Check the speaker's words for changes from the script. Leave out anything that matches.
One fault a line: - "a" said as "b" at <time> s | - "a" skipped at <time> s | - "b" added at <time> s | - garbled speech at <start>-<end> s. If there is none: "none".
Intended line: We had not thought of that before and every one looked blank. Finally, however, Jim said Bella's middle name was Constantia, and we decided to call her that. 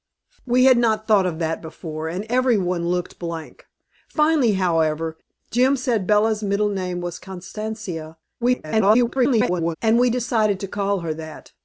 - garbled speech at 8.4-9.8 s